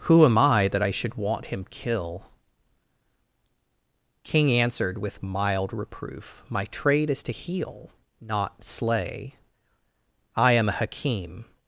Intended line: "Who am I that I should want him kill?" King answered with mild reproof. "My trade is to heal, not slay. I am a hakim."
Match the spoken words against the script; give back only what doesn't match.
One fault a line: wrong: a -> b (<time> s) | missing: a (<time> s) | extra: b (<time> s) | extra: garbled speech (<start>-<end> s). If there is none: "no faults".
no faults